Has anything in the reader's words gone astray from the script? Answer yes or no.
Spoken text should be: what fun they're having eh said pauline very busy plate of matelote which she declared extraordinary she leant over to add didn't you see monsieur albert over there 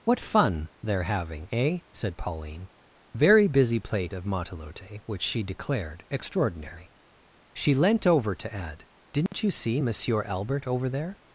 no